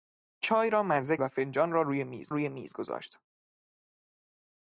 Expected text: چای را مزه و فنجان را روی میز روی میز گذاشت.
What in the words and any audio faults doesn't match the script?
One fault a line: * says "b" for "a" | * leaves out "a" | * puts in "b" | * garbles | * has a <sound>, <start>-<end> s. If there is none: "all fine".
all fine